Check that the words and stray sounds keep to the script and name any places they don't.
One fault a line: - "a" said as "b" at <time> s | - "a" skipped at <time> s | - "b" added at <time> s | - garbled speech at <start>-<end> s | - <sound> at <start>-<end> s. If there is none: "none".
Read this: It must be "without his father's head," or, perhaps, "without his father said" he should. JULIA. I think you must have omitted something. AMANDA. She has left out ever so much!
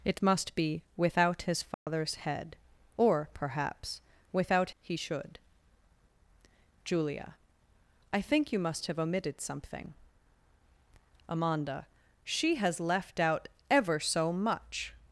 - dropout at 1.7-1.9 s
- "his father said" skipped at 4.7 s